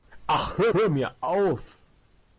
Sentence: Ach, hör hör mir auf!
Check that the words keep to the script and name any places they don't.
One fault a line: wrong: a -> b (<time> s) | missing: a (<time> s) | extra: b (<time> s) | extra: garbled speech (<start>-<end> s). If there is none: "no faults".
no faults